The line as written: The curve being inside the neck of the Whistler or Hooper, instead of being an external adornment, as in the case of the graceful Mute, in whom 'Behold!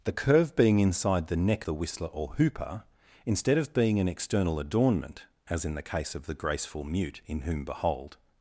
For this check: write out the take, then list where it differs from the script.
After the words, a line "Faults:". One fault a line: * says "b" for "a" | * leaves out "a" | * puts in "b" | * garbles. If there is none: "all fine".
The curve being inside the neck the Whistler or Hooper, instead of being an external adornment, as in the case of the graceful Mute, in whom 'Behold!
Faults:
* leaves out "of"